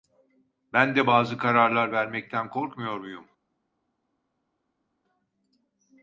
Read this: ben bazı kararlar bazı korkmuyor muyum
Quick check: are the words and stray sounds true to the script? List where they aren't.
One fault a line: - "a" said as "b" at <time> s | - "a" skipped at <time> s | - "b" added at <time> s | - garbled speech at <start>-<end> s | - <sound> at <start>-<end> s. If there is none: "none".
- "de" added at 0.9 s
- "bazı" said as "vermekten" at 1.9 s